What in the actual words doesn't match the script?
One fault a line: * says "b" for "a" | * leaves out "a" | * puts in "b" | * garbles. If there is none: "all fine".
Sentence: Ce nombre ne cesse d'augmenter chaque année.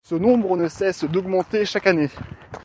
all fine